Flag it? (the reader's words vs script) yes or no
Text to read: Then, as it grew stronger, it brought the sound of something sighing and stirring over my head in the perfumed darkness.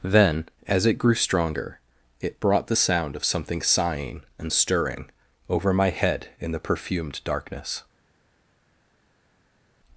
no